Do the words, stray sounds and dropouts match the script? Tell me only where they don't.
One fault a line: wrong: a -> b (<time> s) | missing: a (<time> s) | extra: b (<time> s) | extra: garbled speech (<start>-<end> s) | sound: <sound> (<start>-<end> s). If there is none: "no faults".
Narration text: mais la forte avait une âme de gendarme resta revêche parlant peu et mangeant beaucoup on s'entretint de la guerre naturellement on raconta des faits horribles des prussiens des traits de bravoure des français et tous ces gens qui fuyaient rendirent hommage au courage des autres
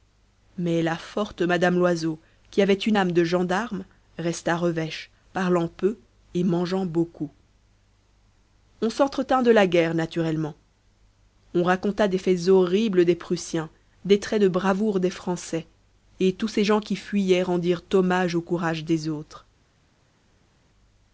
extra: mme loiseau qui (1.4 s)